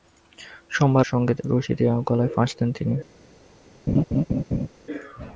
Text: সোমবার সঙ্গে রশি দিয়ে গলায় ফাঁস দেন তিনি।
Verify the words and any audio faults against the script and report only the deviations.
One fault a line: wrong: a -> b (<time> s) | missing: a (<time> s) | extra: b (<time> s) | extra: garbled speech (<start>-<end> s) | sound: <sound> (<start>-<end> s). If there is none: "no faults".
sound: laugh (3.9-4.7 s)